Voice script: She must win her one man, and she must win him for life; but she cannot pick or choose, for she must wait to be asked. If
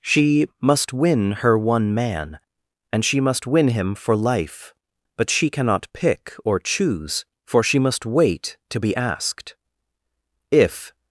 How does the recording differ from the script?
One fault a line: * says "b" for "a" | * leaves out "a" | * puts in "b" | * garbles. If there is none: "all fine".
all fine